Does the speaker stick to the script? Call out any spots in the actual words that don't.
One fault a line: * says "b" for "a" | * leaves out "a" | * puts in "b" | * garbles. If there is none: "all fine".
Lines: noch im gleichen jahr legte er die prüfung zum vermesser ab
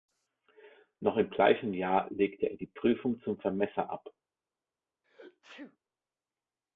all fine